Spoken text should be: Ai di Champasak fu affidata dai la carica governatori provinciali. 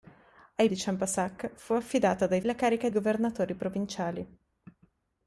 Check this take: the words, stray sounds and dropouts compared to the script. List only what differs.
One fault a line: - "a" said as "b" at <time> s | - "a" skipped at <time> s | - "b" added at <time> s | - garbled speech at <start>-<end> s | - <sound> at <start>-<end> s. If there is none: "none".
none